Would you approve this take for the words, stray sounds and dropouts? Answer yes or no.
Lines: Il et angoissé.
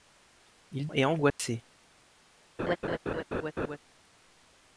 no